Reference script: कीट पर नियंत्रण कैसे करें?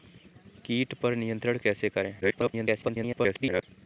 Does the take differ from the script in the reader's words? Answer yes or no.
yes